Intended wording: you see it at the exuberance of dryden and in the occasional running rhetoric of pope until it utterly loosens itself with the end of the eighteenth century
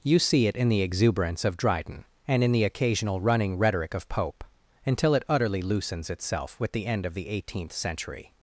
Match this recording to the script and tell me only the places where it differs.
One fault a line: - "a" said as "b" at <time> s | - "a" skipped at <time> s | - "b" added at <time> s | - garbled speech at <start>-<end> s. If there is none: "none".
- "at" said as "in" at 0.6 s